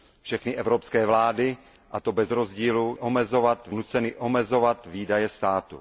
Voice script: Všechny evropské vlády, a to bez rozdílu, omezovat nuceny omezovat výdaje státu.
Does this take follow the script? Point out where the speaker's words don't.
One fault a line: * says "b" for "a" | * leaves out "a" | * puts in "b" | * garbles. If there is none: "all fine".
all fine